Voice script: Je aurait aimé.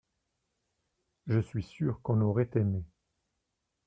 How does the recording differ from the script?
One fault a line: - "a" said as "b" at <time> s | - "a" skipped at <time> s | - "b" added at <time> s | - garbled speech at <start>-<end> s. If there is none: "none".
- "suis sûr qu'on" added at 1.4 s